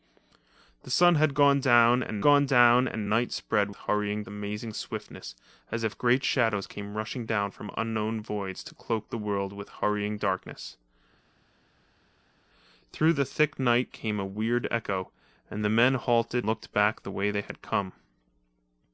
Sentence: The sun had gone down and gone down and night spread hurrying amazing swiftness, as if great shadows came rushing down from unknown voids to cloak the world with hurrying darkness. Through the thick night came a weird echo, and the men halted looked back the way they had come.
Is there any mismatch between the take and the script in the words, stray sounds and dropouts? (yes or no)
no